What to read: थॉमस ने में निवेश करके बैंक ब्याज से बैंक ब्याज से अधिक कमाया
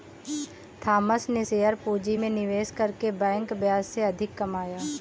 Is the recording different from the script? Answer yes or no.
yes